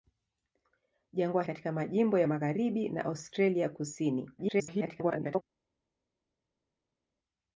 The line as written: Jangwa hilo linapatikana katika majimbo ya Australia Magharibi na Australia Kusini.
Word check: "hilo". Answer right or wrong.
wrong